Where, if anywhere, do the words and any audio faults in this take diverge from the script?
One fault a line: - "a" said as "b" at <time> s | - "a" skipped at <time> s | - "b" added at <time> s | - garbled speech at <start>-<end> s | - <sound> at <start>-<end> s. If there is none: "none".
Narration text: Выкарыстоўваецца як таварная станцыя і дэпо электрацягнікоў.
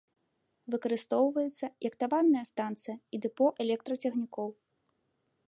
none